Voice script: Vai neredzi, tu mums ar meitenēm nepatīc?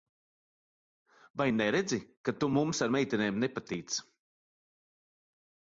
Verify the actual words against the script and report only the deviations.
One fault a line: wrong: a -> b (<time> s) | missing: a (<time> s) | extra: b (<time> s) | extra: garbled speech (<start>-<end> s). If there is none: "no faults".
extra: ka (2.2 s)